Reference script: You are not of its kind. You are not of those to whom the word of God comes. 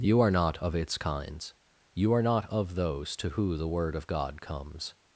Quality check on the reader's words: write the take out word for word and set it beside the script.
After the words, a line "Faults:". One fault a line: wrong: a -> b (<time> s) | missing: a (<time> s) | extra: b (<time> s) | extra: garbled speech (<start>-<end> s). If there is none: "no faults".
You are not of its kinds. You are not of those to who the word of God comes.
Faults:
wrong: kind -> kinds (1.0 s)
wrong: whom -> who (3.3 s)